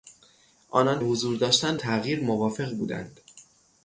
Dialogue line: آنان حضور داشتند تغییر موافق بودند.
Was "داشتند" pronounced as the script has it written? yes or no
yes